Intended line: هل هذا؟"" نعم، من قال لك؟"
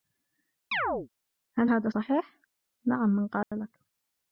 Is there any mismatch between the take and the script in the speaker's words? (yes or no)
yes